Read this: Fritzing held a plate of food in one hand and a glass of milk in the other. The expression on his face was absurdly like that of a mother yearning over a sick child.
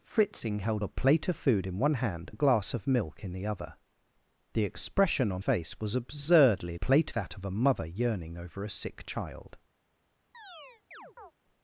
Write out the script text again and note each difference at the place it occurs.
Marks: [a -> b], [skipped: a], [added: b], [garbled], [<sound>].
Fritzing held a plate of food in one hand [skipped: and] a glass of milk in the other. The expression on [skipped: his] face was absurdly [like -> plate] that of a mother yearning over a sick child. [chirp]